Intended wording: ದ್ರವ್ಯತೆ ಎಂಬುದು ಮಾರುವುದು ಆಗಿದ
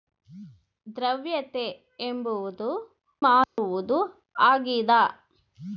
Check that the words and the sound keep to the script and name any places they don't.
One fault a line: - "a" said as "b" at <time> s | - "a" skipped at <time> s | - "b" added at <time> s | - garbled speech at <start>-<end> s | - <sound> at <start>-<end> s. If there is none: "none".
- dropout at 3.4-3.6 s